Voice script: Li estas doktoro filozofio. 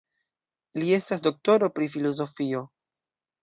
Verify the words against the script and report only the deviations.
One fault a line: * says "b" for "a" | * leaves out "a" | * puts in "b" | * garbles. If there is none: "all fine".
* puts in "pri"